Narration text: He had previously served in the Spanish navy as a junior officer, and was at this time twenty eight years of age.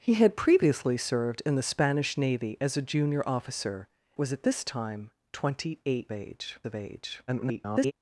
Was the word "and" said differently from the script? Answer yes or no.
yes